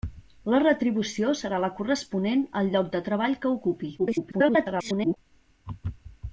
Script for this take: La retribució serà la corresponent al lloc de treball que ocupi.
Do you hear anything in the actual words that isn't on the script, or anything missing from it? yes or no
yes